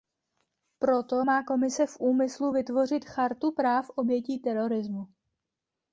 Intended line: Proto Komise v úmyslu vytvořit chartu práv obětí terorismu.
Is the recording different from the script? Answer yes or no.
yes